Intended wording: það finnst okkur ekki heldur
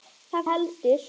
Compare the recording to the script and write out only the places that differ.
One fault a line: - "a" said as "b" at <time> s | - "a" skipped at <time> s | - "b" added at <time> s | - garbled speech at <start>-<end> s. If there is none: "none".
- "finnst okkur ekki" skipped at 0.5 s